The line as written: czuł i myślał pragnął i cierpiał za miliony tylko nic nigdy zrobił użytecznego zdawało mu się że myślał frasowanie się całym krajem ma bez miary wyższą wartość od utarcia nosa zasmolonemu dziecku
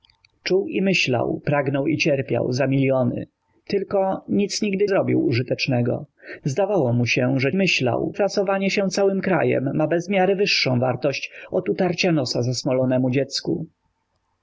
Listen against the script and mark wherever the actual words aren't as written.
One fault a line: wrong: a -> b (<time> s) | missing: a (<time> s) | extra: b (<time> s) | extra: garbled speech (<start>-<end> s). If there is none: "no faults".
no faults